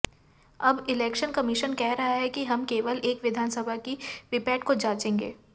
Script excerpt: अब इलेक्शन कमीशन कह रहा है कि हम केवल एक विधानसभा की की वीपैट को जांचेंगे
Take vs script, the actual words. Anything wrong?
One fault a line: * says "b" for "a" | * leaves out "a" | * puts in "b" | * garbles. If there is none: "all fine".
* leaves out "की"